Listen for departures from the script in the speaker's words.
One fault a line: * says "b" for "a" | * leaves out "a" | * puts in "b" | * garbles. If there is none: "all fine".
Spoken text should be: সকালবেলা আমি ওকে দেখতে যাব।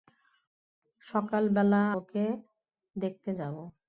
* leaves out "আমি"